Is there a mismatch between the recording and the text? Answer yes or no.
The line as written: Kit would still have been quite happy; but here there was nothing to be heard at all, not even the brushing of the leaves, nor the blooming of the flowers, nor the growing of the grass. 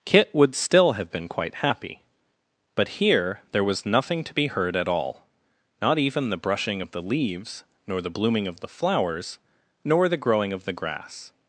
no